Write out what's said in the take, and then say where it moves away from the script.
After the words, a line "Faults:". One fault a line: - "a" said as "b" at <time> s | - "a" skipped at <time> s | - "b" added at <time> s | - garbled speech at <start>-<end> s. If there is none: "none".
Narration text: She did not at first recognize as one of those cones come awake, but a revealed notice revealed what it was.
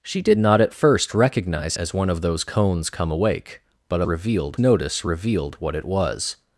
She did not at first recognize as one of those cones come awake, but a revealed notice revealed what it was.
Faults:
none